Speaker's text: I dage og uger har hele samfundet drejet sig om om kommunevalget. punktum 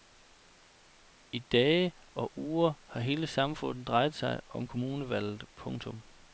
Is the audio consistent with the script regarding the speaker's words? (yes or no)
no